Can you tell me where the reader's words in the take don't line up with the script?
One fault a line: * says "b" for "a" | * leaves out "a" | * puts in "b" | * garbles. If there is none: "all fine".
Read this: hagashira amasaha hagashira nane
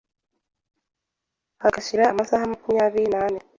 * says "makumyabiri" for "hagashira"